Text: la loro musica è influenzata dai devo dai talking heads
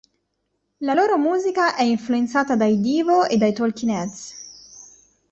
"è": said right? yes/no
yes